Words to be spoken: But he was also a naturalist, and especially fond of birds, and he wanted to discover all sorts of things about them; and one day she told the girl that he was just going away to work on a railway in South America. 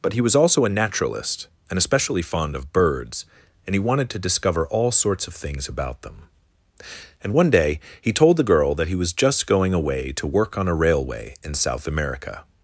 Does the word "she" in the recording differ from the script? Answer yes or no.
yes